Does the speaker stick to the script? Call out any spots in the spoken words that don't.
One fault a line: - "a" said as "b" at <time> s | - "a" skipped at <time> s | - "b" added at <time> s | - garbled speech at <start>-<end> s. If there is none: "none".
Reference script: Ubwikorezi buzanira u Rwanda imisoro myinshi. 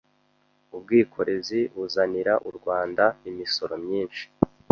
none